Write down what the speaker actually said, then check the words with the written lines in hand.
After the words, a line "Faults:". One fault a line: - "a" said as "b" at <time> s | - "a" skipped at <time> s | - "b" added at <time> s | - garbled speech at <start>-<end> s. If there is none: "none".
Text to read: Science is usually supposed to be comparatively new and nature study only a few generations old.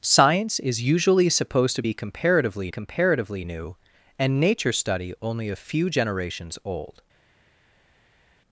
Science is usually supposed to be comparatively comparatively new and nature study only a few generations old.
Faults:
- "comparatively" added at 2.7 s